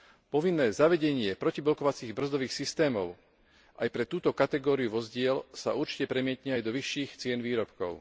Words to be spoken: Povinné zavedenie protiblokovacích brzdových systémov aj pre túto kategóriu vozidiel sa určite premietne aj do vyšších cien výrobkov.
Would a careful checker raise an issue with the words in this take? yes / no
no